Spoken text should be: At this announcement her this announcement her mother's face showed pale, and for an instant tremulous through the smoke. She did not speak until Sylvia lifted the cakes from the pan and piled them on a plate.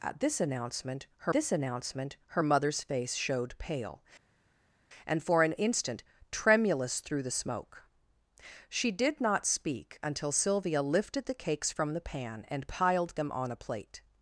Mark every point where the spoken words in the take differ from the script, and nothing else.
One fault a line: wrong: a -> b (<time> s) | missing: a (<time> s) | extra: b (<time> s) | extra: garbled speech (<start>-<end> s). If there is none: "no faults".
no faults